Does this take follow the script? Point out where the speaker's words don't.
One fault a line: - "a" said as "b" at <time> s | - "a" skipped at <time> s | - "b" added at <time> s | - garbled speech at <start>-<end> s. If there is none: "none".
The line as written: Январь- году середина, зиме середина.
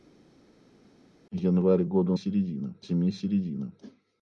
none